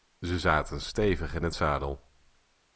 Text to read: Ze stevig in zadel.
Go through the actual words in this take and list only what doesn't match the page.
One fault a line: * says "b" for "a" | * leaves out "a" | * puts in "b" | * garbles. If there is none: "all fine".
* puts in "zaten"
* puts in "het"